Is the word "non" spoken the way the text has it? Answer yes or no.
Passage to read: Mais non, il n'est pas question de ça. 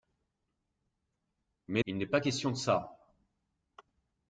no